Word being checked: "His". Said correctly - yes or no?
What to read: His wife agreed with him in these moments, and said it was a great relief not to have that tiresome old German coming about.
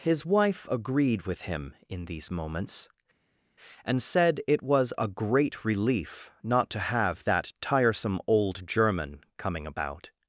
yes